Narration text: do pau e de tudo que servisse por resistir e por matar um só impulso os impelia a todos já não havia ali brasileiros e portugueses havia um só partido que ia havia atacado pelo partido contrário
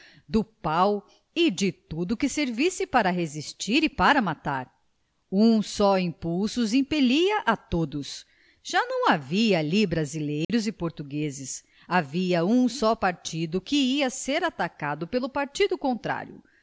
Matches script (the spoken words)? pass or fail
fail